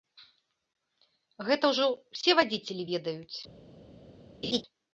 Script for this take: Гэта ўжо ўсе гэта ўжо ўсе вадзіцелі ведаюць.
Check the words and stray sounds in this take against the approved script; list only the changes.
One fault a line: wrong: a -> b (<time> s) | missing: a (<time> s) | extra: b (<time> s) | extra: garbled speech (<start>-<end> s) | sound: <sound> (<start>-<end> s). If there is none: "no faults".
missing: гэта ўжо ўсе (2.3 s)
sound: laugh (4.4-4.6 s)